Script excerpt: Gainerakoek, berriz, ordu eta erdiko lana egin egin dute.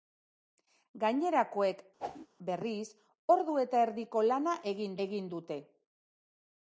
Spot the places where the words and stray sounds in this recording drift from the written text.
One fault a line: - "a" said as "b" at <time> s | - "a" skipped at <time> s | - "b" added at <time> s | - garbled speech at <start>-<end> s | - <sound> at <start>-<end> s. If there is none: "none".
- whoosh at 2.0-2.3 s